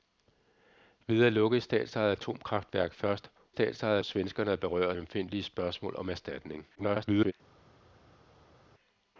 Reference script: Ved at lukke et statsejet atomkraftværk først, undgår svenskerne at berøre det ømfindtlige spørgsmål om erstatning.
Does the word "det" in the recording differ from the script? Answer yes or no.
yes